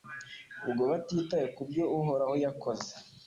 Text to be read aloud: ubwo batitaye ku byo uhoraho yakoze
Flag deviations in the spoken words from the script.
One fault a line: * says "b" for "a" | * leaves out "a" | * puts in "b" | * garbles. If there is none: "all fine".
all fine